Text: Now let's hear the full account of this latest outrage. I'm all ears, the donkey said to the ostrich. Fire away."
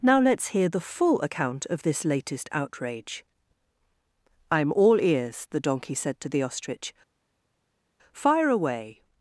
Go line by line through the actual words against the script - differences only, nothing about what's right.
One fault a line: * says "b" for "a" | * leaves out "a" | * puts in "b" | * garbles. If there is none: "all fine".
all fine